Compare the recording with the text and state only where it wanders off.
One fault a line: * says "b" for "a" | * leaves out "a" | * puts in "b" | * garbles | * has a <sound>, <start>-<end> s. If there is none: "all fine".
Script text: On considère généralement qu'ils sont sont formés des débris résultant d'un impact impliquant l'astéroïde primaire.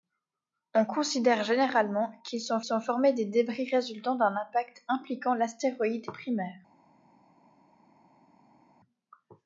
all fine